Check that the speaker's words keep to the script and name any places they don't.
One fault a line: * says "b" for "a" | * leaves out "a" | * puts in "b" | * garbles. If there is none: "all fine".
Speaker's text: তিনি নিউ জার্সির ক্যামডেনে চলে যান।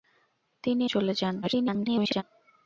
* leaves out "নিউ জার্সির ক্যামডেনে"
* garbles